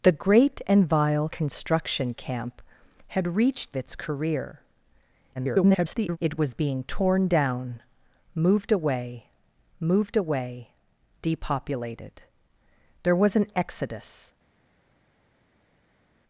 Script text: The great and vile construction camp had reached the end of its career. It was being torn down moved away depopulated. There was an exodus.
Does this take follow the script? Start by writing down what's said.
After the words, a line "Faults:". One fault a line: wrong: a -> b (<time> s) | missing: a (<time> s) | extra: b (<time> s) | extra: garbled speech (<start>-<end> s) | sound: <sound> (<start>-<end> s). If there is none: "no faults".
The great and vile construction camp had reached its career. [garbled] It was being torn down moved away moved away depopulated. There was an exodus.
Faults:
missing: the end of (3.7 s)
extra: garbled speech (5.3-6.2 s)
extra: moved away (9.8 s)